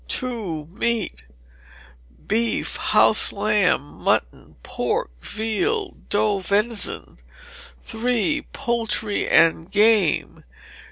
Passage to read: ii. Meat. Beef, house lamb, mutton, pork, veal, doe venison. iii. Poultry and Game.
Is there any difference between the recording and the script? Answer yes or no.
no